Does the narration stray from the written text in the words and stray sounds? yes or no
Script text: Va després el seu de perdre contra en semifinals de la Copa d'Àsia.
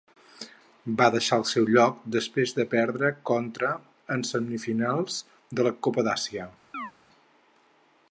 yes